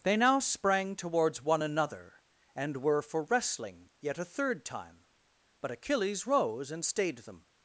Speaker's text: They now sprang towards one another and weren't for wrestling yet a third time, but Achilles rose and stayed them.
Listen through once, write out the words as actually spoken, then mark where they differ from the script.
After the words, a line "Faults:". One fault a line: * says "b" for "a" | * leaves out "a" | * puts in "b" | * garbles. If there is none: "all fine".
They now sprang towards one another and were for wrestling yet a third time, but Achilles rose and stayed them.
Faults:
* says "were" for "weren't"